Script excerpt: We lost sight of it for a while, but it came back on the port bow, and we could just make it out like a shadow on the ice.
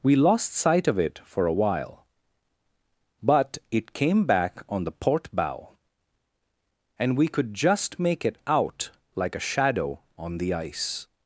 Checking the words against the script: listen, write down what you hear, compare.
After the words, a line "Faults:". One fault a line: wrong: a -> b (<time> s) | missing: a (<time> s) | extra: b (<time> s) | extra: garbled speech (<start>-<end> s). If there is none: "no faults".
We lost sight of it for a while, but it came back on the port bow, and we could just make it out like a shadow on the ice.
Faults:
no faults